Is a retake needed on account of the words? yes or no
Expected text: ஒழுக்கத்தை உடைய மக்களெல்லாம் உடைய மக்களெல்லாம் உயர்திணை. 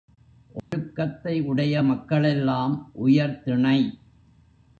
yes